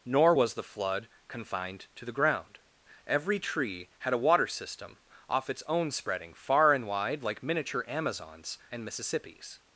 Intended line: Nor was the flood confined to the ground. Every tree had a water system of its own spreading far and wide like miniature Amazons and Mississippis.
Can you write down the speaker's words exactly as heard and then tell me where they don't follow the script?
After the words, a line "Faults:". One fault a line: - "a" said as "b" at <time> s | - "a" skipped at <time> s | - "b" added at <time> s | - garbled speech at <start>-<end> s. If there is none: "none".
Nor was the flood confined to the ground. Every tree had a water system off its own spreading far and wide like miniature Amazons and Mississippis.
Faults:
- "of" said as "off" at 5.3 s